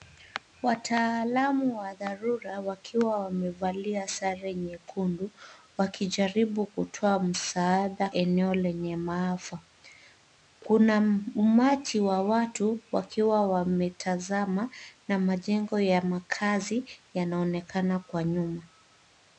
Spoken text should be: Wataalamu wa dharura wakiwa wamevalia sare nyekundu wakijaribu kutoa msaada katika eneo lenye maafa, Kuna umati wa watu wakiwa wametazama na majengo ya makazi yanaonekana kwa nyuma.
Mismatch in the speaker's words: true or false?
true